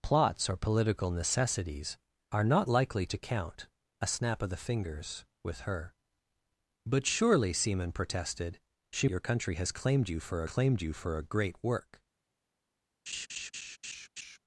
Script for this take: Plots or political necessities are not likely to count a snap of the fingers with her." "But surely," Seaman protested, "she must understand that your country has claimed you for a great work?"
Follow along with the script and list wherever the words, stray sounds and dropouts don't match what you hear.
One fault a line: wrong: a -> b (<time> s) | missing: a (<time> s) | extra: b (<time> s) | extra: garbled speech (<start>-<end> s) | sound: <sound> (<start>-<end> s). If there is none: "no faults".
wrong: must understand that your country has -> your country has claimed you for (9.1 s)
sound: laugh (13.1-14.4 s)